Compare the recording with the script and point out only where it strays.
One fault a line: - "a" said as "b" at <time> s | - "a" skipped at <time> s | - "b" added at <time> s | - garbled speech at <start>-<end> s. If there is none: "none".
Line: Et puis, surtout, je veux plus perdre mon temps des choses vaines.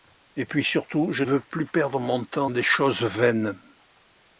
none